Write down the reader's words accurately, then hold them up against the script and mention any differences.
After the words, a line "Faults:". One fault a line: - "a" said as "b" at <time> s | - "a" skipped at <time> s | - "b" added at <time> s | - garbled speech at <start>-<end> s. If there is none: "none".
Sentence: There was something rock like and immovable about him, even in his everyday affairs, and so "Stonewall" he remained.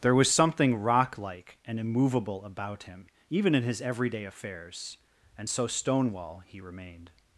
There was something rock like and immovable about him, even in his everyday affairs, and so "Stonewall" he remained.
Faults:
none